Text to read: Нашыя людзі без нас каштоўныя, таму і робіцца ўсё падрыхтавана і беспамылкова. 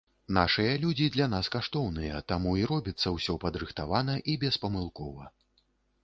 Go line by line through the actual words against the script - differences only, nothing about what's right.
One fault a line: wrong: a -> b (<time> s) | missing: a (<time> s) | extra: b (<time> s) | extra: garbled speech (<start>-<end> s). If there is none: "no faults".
wrong: без -> для (1.1 s)